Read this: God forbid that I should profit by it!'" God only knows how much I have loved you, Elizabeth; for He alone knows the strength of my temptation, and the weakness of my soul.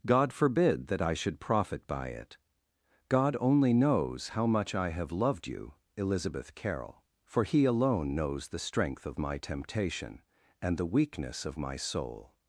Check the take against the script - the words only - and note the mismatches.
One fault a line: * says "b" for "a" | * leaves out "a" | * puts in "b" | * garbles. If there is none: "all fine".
* puts in "carroll"